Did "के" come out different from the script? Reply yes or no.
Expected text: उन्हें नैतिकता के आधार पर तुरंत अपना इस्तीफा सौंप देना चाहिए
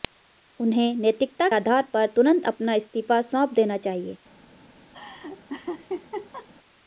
yes